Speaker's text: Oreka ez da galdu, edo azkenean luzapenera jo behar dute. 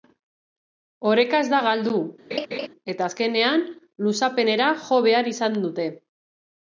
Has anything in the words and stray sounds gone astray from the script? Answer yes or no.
yes